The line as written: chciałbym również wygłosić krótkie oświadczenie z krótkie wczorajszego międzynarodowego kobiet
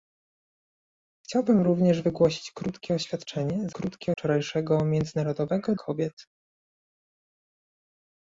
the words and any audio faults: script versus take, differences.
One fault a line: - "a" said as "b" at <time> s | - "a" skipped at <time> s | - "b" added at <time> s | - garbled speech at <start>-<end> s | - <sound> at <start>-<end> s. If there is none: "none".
none